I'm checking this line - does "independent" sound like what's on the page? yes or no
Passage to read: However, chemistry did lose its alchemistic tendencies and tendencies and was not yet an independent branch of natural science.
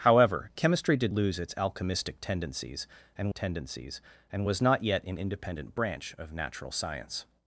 yes